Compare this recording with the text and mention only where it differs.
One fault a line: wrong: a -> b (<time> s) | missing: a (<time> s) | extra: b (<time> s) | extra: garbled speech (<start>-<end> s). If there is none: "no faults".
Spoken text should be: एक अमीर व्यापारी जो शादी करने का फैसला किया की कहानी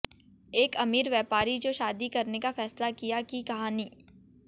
no faults